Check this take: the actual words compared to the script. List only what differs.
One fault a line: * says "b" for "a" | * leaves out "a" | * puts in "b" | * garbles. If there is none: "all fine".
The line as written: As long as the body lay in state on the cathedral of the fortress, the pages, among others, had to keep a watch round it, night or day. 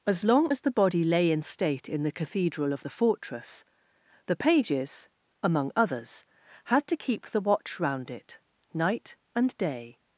* says "in" for "on"
* says "the" for "a"
* says "and" for "or"